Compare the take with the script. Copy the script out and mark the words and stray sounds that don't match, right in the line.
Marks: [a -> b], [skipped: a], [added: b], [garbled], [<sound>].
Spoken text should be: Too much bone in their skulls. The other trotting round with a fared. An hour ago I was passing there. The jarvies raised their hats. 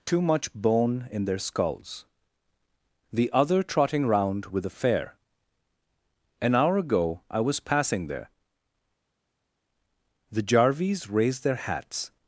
Too much bone in their skulls. The other trotting round with a [fared. -> fare] An hour ago I was passing there. The jarvies raised their hats.